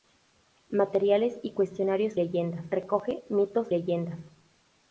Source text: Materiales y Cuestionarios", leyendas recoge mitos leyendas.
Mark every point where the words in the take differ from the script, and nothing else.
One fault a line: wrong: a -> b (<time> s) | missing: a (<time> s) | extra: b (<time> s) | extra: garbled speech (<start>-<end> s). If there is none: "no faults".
no faults